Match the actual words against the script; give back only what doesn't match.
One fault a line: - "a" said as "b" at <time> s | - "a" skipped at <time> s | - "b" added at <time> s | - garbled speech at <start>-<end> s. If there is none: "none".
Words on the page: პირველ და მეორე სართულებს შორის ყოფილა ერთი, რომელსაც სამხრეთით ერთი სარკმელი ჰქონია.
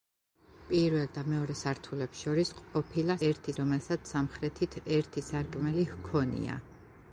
none